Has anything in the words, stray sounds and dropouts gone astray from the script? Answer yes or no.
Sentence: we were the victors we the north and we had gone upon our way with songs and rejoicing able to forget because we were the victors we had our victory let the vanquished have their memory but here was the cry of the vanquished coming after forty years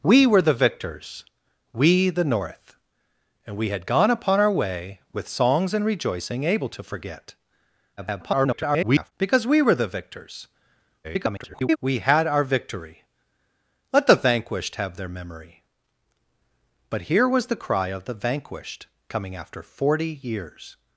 yes